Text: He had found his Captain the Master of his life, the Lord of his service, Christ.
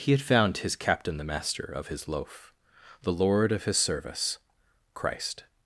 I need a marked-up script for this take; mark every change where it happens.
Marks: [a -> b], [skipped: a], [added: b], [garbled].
He had found his Captain the Master of his [life, -> loaf] the Lord of his service, Christ.